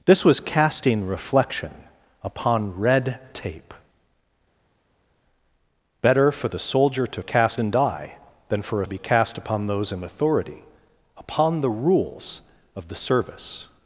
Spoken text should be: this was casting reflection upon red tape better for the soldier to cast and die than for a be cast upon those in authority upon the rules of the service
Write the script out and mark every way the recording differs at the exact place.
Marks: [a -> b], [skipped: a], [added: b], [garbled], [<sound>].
this was casting reflection upon red tape better for the soldier to cast and die than for a be cast upon those in authority upon the rules of the service